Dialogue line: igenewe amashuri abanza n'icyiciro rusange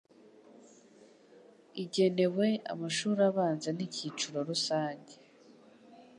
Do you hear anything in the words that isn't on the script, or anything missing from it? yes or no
no